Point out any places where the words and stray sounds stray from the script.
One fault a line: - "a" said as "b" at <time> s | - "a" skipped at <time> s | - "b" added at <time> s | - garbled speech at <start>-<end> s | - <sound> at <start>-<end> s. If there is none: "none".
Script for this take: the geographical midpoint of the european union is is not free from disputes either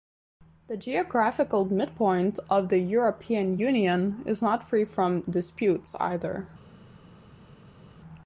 - "is" skipped at 4.4 s